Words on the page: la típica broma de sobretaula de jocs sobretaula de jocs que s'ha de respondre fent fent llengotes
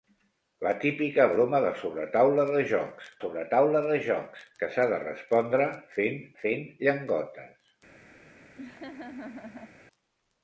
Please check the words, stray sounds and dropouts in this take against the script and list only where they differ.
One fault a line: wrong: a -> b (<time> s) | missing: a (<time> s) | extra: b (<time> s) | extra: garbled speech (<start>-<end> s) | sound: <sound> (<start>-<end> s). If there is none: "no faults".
sound: laugh (8.6-9.8 s)